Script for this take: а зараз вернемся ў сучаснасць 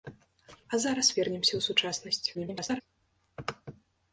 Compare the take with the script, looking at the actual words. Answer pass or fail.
fail